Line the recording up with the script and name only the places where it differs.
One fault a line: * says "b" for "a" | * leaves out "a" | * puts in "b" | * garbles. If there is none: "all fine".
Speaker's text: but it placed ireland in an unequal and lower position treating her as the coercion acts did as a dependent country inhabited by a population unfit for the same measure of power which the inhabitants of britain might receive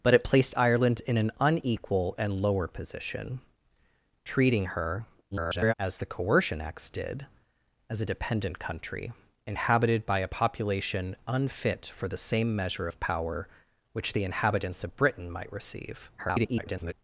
* garbles
* garbles